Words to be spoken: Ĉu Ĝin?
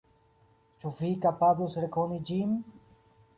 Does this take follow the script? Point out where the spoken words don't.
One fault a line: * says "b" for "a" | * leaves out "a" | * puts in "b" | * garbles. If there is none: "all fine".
* puts in "Vi kapablus rekoni"